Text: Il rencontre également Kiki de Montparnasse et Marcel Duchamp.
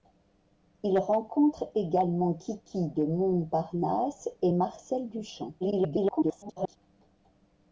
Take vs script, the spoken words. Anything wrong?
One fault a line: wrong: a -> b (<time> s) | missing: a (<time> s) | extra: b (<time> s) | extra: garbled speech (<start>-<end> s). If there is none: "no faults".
extra: garbled speech (5.6-6.8 s)